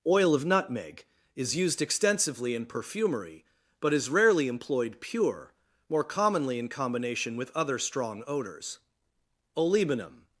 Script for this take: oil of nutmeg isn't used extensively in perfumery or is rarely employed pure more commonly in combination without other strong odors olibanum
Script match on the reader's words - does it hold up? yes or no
no